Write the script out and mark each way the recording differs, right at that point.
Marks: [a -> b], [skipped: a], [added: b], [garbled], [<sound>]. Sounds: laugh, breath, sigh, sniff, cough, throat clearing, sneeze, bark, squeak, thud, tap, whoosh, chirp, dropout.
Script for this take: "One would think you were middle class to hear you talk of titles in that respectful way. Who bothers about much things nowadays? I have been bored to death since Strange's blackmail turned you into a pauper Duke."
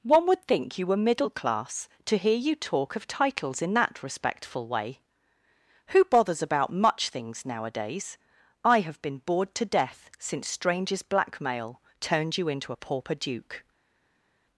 "One would think you were middle class to hear you talk of titles in that respectful way. Who bothers about much things nowadays? I have been bored to death since Strange's blackmail turned you into a pauper Duke."